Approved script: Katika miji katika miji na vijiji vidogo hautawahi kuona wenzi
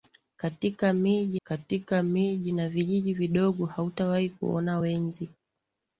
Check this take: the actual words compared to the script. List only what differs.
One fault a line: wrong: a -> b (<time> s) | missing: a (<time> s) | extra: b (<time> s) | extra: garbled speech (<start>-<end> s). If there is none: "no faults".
no faults